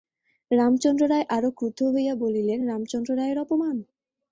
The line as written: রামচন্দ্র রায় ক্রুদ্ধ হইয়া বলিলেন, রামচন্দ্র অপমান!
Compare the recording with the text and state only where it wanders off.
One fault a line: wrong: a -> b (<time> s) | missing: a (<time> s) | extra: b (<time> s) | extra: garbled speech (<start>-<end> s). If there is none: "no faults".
extra: আরো (1.3 s)
extra: রায়ের (3.2 s)